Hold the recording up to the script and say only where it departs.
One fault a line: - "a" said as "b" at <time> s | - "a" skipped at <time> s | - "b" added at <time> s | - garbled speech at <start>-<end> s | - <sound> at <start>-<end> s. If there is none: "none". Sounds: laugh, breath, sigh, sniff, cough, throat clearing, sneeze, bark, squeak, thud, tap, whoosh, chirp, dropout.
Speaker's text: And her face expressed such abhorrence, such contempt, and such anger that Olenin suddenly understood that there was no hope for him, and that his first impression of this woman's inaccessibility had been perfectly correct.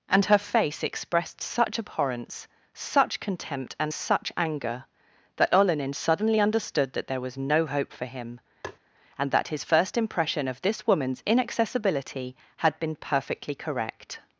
- tap at 8.6-8.8 s